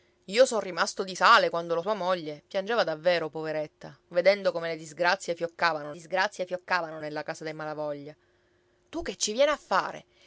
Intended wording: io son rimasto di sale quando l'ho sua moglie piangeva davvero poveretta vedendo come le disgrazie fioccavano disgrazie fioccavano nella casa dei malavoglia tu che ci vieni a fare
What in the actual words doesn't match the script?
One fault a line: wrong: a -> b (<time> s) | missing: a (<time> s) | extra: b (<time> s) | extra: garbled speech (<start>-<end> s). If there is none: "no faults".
no faults